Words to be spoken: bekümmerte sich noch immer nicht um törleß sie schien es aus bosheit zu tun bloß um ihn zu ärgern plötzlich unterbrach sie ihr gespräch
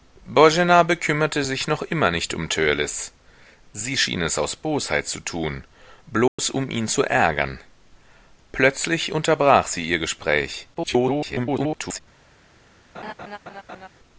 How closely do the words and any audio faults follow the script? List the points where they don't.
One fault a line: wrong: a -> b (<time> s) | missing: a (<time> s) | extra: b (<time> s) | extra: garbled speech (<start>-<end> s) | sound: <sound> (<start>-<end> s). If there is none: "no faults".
sound: dropout (6.3-6.4 s)
extra: garbled speech (10.7-12.0 s)
sound: laugh (12.9-13.9 s)